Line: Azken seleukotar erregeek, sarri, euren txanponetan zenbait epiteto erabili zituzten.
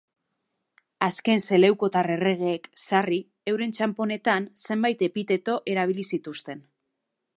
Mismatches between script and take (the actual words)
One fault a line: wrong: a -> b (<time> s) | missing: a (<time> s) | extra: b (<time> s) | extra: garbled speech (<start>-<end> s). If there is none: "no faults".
no faults